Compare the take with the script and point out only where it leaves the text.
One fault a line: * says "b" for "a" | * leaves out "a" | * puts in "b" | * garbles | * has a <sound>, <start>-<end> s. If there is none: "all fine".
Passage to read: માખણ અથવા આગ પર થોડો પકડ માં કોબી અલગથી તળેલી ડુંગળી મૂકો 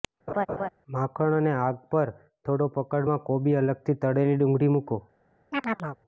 * has a laugh, 0.3-0.7 s
* says "અને" for "અથવા"
* has a chirp, 5.5-6.0 s